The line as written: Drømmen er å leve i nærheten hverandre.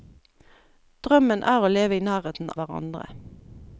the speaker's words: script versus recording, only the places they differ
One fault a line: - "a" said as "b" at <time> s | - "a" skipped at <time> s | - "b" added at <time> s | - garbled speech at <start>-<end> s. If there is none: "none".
none